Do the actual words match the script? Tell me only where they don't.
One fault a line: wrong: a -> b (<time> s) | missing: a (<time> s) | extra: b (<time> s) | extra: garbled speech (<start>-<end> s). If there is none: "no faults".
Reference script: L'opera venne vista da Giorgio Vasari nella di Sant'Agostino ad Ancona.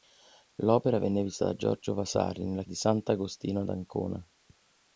no faults